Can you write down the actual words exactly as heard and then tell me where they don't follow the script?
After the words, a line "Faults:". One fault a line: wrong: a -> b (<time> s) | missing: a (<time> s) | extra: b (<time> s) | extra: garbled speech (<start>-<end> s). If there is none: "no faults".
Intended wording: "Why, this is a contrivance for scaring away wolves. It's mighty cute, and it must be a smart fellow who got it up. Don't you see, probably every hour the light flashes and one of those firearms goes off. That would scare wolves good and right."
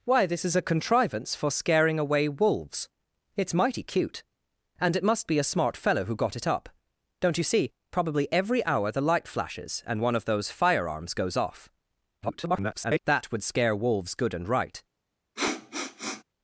"Why, this is a contrivance for scaring away wolves. It's mighty cute, and it must be a smart fellow who got it up. Don't you see, probably every hour the light flashes and one of those firearms goes off. [garbled] That would scare wolves good and right."
Faults:
extra: garbled speech (12.2-13.0 s)